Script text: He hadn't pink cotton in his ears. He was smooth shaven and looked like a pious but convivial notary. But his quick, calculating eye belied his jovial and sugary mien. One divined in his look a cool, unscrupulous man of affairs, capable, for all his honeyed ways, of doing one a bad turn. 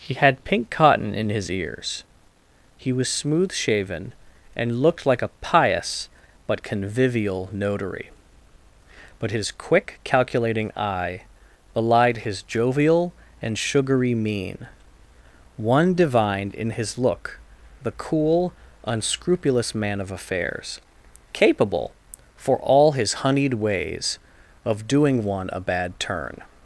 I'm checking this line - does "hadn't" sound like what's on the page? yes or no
no